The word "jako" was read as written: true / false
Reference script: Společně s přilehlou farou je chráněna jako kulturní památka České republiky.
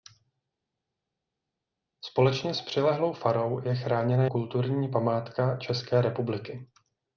false